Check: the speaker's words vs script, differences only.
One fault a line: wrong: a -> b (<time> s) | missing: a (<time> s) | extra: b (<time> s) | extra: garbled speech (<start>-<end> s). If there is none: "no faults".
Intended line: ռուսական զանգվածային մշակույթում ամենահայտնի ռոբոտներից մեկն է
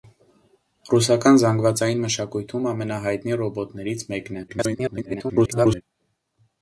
extra: garbled speech (4.5-5.8 s)